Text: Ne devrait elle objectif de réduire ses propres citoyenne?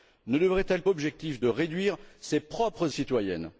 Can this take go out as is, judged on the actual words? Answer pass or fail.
pass